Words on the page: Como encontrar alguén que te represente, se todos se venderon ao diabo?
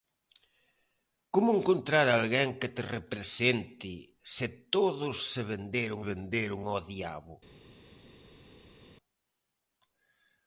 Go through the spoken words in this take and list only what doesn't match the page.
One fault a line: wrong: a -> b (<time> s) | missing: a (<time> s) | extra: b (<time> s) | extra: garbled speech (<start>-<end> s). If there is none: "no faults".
extra: venderon (6.1 s)